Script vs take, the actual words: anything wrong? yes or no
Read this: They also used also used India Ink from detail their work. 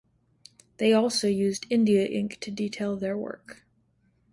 yes